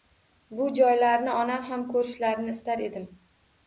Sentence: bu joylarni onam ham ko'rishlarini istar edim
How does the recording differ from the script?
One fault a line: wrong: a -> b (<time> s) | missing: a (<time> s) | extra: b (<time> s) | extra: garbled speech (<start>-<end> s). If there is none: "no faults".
no faults